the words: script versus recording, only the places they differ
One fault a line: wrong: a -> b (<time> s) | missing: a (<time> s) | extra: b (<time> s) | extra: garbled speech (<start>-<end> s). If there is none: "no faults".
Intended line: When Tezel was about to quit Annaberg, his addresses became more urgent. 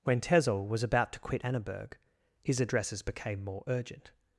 no faults